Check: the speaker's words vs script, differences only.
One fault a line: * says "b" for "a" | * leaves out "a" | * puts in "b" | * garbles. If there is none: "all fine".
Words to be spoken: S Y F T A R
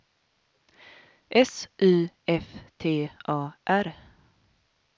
all fine